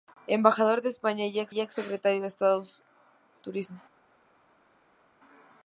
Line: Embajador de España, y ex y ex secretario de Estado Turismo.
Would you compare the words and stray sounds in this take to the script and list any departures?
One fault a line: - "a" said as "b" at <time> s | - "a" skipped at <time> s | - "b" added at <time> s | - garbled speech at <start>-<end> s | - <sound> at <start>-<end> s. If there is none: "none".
none